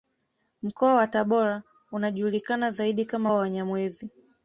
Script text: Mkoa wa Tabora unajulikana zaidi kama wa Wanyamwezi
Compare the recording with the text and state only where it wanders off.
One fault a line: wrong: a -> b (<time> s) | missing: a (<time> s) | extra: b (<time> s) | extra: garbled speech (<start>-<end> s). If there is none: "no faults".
no faults